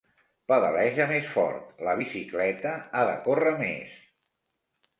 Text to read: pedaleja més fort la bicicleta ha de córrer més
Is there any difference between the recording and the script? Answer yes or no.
no